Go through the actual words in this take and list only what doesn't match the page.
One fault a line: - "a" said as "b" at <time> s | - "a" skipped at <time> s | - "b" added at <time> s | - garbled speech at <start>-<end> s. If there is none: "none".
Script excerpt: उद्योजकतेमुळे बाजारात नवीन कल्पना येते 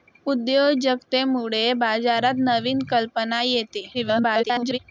- garbled speech at 3.9-4.8 s